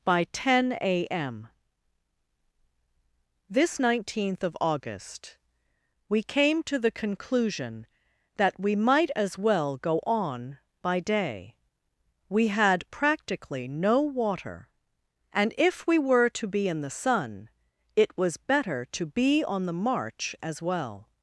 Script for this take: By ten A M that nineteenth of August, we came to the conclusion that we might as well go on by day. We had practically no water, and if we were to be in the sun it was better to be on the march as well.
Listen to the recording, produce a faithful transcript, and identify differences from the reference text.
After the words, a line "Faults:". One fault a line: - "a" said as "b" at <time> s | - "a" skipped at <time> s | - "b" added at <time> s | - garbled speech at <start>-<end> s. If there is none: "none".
By ten A M this nineteenth of August, we came to the conclusion that we might as well go on by day. We had practically no water, and if we were to be in the sun it was better to be on the march as well.
Faults:
- "that" said as "this" at 3.5 s